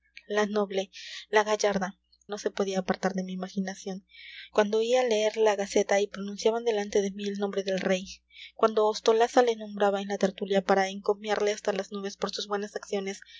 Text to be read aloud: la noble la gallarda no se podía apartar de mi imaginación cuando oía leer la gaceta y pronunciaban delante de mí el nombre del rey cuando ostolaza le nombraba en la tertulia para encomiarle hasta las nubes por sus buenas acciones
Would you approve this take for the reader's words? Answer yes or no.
yes